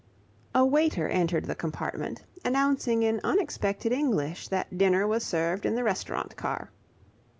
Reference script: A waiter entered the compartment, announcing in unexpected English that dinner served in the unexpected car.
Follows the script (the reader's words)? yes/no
no